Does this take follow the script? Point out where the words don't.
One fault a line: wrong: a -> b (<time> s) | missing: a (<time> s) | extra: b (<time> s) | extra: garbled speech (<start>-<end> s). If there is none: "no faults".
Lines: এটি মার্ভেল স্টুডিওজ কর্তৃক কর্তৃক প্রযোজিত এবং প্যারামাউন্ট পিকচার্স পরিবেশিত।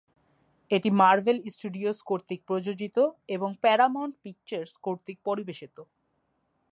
missing: কর্তৃক (2.4 s)
extra: কর্তৃক (4.9 s)